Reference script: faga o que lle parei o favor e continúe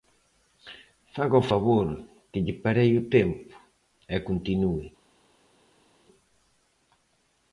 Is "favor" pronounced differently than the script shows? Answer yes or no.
yes